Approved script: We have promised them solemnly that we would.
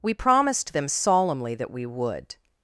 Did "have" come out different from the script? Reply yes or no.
yes